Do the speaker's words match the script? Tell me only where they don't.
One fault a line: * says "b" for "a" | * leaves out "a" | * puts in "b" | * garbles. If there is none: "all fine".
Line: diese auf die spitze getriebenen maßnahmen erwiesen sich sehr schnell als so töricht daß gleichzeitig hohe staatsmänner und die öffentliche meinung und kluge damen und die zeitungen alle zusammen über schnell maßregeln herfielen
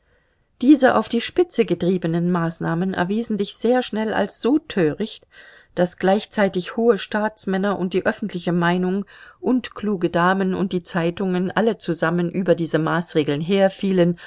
* says "diese" for "schnell"